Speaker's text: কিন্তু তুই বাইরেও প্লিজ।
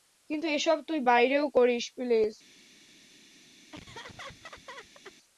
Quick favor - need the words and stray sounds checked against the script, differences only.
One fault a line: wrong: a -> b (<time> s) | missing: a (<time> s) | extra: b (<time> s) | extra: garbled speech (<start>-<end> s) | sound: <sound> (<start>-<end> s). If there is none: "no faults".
extra: এসব (0.5 s)
extra: করিস (1.5 s)
sound: laugh (3.7-5.2 s)